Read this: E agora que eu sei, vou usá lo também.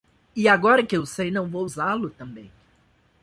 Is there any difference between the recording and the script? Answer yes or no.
yes